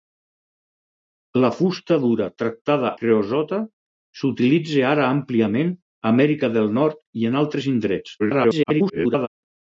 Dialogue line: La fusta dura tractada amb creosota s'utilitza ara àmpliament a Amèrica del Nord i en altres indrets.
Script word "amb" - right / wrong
wrong